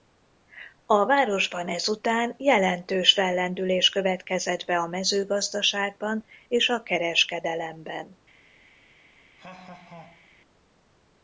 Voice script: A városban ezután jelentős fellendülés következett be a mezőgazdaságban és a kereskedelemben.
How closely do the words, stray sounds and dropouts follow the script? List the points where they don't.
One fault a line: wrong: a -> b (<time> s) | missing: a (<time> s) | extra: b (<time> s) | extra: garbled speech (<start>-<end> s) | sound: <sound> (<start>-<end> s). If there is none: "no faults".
sound: laugh (9.4-10.3 s)